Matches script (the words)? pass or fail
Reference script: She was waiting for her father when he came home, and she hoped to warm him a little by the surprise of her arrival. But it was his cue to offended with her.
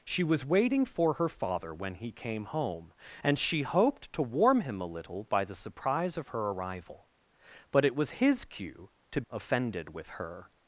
pass